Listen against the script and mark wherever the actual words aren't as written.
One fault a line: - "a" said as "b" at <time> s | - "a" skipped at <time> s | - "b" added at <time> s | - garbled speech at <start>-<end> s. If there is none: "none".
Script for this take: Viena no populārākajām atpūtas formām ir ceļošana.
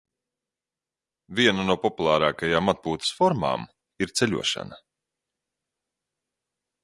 none